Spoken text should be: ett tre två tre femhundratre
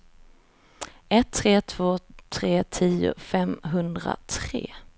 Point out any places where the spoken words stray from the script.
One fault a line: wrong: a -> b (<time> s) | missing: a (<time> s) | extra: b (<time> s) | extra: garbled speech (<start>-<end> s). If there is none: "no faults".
extra: tio (2.6 s)